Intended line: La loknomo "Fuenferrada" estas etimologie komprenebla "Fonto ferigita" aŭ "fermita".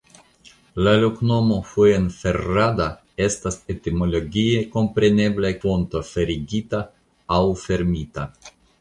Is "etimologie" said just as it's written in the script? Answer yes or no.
yes